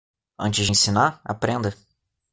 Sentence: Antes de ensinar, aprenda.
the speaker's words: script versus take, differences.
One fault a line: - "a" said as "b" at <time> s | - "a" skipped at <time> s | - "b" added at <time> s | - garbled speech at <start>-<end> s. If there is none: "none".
none